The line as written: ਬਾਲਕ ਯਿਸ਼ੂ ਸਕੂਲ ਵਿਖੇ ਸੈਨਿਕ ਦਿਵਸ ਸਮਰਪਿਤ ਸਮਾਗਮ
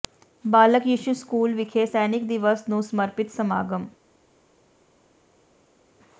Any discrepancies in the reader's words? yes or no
yes